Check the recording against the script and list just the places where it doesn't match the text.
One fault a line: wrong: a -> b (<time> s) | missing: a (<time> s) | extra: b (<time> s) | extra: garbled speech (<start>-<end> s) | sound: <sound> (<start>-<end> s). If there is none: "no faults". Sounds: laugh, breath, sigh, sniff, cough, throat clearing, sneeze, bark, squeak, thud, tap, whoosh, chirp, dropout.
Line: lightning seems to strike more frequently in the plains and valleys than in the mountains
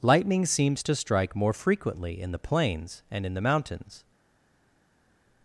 missing: valleys than (3.3 s)